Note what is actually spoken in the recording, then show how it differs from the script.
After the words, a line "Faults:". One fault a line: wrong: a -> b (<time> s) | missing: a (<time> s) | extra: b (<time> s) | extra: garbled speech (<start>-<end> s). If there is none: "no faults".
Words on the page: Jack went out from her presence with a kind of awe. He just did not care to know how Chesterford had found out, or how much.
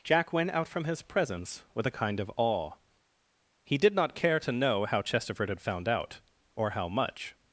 Jack went out from his presence with a kind of awe. He did not care to know how Chesterford had found out, or how much.
Faults:
wrong: her -> his (0.8 s)
missing: just (3.8 s)